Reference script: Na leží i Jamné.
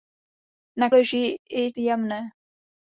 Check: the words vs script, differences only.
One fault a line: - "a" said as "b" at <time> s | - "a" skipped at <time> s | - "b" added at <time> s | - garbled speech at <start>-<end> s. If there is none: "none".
none